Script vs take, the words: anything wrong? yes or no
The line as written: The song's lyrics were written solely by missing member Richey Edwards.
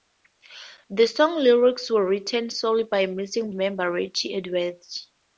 no